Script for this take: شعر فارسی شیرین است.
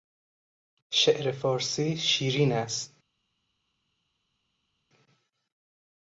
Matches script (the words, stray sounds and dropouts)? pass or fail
pass